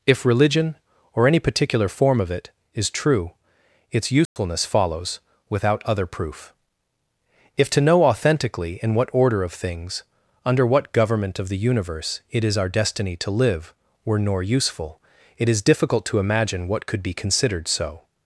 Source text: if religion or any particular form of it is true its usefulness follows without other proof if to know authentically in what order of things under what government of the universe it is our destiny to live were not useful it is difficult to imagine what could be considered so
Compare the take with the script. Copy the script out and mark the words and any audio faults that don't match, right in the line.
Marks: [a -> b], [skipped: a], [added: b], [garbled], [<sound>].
if religion or any particular form of it is true its usefulness [dropout] follows without other proof if to know authentically in what order of things under what government of the universe it is our destiny to live were [not -> nor] useful it is difficult to imagine what could be considered so